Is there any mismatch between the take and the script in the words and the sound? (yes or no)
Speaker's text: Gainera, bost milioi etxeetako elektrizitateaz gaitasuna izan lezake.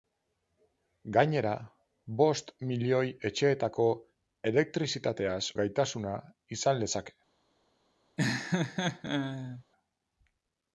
yes